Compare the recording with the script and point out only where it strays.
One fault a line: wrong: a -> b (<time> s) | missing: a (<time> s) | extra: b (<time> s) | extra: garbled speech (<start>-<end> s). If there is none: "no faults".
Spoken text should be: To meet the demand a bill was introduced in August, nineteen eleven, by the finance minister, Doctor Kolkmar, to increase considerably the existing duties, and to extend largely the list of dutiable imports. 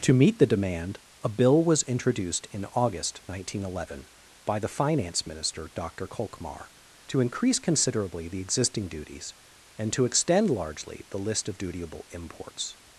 no faults